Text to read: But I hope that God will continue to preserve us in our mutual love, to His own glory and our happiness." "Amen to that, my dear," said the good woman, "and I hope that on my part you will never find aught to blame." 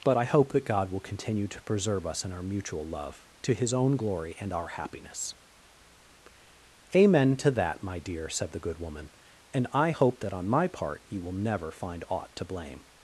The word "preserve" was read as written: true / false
true